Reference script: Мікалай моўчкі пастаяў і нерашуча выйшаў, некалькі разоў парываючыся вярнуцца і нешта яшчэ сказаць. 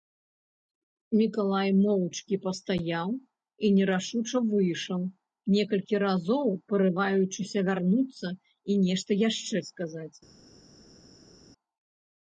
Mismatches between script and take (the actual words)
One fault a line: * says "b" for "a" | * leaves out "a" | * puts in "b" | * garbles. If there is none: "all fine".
all fine